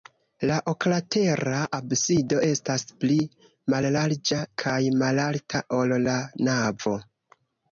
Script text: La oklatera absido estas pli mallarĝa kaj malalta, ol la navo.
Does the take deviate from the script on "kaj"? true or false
false